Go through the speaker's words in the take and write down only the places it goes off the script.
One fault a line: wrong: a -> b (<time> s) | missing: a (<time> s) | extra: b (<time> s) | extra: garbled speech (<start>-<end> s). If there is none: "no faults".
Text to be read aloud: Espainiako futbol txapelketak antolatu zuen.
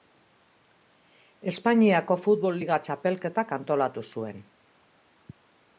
extra: liga (2.6 s)